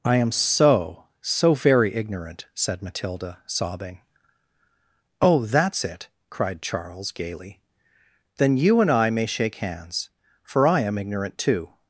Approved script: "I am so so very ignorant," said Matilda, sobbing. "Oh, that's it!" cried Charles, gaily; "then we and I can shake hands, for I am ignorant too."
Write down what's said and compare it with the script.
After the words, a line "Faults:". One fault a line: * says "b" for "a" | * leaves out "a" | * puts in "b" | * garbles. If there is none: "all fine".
"I am so so very ignorant," said Matilda, sobbing. "Oh, that's it!" cried Charles, gaily; "then you and I may shake hands, for I am ignorant too."
Faults:
* says "you" for "we"
* says "may" for "can"